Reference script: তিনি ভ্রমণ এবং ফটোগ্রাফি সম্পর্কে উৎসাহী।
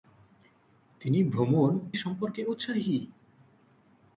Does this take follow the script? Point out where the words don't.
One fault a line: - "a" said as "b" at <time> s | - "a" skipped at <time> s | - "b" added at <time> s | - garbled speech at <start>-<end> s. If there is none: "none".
- "এবং ফটোগ্রাফি" skipped at 1.7 s